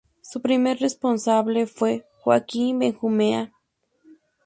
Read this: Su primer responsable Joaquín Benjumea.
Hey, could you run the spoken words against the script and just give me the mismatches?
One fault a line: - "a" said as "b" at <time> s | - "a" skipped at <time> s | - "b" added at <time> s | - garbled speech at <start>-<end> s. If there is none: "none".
- "fue" added at 1.6 s